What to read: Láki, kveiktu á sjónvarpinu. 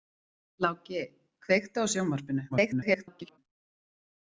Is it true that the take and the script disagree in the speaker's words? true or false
true